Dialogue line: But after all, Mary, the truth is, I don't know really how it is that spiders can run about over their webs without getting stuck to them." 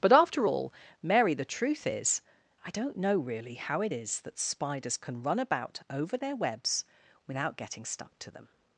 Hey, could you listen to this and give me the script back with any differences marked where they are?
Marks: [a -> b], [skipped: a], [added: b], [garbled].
But after all, Mary, the truth is, I don't know really how it is that spiders can run about over their webs without getting stuck to them."